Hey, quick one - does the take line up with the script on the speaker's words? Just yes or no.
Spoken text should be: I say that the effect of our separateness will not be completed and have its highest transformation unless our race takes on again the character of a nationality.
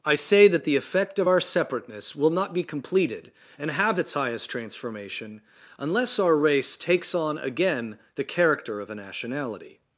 yes